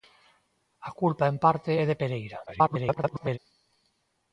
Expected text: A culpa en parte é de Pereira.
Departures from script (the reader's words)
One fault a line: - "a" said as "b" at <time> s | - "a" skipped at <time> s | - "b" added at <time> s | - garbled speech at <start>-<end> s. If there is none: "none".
- garbled speech at 2.5-3.4 s